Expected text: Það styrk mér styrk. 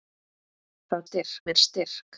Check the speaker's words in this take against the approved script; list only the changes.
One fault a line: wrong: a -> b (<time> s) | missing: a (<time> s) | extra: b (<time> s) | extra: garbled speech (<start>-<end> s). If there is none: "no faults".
no faults